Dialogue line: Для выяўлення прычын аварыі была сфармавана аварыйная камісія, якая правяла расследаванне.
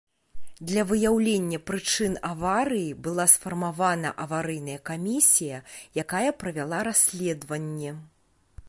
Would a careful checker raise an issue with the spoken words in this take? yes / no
no